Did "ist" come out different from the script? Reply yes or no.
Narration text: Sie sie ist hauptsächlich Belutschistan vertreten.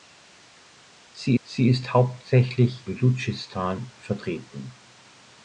no